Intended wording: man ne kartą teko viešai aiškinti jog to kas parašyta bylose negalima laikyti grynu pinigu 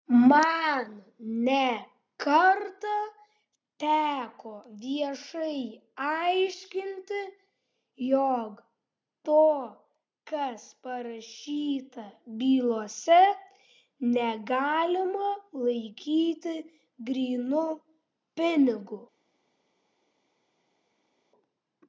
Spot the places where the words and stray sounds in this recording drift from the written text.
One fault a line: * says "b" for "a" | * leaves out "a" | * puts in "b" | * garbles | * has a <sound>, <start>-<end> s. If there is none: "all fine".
all fine